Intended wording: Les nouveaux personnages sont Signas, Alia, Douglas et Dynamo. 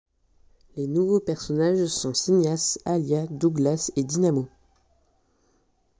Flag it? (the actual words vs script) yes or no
no